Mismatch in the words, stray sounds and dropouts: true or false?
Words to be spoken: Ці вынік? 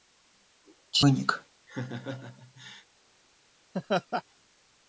true